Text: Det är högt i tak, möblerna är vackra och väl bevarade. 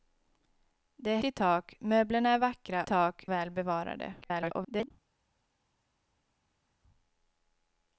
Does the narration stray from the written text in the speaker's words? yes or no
yes